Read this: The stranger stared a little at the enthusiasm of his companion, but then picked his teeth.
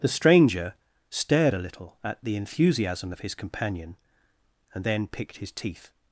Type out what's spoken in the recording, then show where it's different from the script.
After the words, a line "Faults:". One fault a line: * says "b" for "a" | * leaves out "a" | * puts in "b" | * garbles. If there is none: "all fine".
The stranger stared a little at the enthusiasm of his companion, and then picked his teeth.
Faults:
* says "and" for "but"